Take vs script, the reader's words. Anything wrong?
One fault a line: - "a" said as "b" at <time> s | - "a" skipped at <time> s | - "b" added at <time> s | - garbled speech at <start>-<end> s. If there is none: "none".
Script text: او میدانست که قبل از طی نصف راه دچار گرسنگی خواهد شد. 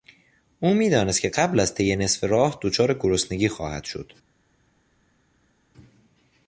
none